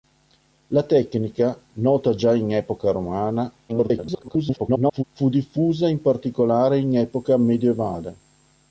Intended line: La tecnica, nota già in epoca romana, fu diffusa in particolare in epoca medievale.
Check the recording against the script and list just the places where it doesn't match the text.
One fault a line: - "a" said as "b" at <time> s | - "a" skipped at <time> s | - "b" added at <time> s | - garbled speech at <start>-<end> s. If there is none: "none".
- garbled speech at 3.7-5.0 s